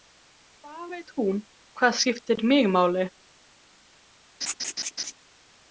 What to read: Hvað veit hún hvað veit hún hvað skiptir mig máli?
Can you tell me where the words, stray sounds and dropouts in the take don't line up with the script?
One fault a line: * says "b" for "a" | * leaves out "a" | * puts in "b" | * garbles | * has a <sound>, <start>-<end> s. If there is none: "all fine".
* leaves out "veit hún hvað"
* has a laugh, 4.4-5.1 s